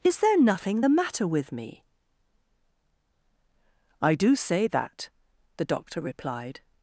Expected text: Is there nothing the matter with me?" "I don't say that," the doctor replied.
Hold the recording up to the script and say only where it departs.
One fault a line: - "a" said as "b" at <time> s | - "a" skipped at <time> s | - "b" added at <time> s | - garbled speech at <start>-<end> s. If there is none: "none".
- "don't" said as "do" at 4.1 s